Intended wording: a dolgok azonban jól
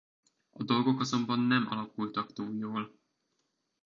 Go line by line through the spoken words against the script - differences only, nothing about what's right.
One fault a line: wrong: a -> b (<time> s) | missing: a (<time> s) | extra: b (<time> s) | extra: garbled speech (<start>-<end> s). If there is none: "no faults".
extra: nem alakultak túl (1.4 s)